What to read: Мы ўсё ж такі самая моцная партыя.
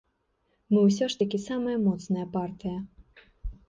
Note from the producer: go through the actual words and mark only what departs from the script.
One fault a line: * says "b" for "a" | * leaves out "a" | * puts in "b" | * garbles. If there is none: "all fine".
all fine